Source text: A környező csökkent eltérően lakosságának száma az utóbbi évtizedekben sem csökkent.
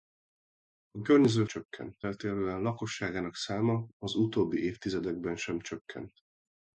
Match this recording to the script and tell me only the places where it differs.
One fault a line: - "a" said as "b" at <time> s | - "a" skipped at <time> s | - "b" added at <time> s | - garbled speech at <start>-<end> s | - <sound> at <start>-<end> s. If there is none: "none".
none